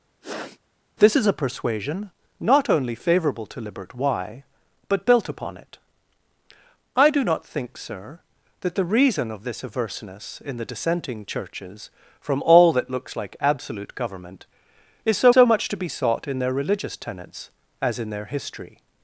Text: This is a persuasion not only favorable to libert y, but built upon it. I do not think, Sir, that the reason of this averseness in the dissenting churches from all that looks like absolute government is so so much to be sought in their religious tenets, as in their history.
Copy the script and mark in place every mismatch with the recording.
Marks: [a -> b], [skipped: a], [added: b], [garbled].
This is a persuasion not only favorable to libert y, but built upon it. I do not think, Sir, that the reason of this averseness in the dissenting churches from all that looks like absolute government is so so much to be sought in their religious tenets, as in their history.